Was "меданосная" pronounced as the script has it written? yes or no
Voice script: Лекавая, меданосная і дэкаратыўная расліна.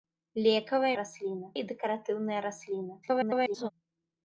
no